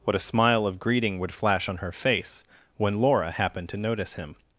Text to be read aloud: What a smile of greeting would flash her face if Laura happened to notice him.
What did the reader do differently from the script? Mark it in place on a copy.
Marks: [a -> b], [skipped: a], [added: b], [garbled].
What a smile of greeting would flash [added: on] her face [if -> when] Laura happened to notice him.